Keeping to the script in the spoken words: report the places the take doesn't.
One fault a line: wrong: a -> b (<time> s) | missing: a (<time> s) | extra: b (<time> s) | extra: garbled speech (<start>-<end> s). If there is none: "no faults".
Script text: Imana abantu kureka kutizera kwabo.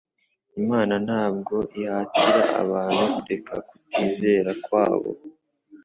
extra: ntabwo ihatira (1.1 s)